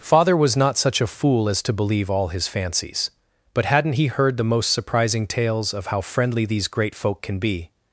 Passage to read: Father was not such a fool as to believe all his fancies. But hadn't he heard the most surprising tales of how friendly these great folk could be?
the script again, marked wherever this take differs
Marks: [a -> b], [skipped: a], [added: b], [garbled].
Father was not such a fool as to believe all his fancies. But hadn't he heard the most surprising tales of how friendly these great folk [could -> can] be?